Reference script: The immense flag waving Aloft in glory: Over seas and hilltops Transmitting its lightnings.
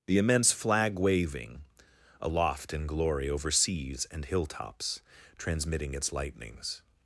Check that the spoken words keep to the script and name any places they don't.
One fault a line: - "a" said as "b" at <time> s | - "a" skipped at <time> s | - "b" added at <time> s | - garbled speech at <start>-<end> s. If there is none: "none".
none